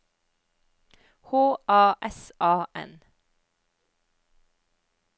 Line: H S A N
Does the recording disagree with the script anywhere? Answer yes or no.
yes